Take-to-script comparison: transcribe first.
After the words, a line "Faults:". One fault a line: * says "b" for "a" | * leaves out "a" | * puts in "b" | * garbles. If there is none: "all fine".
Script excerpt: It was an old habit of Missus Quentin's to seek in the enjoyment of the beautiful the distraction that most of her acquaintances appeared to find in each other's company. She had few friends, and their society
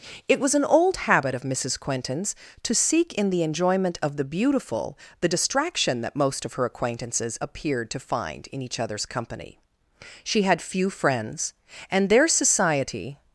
It was an old habit of Missus Quentin's to seek in the enjoyment of the beautiful the distraction that most of her acquaintances appeared to find in each other's company. She had few friends, and their society
Faults:
all fine